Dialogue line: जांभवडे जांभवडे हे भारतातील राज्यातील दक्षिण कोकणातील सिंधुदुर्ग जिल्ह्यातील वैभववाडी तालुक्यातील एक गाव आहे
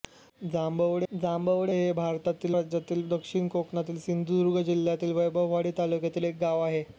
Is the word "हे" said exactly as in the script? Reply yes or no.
yes